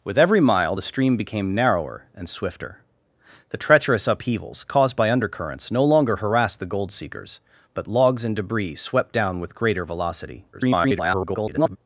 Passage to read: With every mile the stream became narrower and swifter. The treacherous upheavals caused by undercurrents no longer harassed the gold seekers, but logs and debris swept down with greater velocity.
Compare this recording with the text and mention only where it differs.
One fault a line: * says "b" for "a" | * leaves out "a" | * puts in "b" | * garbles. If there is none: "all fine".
* garbles